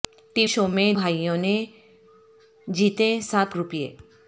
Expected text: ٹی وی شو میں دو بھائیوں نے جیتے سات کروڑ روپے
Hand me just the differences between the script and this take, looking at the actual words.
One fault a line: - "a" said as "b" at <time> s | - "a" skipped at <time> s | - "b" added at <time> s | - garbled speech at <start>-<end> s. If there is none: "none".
- "وی" skipped at 0.5 s
- "دو" skipped at 0.9 s
- "کروڑ" skipped at 3.5 s